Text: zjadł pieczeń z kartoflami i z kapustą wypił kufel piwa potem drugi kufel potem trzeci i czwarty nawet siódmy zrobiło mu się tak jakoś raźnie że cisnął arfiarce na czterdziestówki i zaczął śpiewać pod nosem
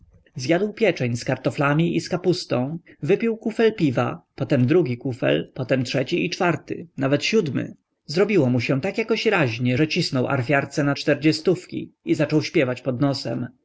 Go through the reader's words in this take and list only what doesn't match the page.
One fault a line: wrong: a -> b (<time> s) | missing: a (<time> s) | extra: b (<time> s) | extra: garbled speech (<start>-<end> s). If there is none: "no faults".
no faults